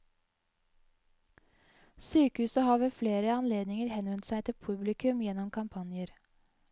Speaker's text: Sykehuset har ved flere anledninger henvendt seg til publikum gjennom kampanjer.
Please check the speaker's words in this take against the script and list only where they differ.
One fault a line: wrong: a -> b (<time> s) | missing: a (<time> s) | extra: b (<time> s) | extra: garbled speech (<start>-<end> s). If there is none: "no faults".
no faults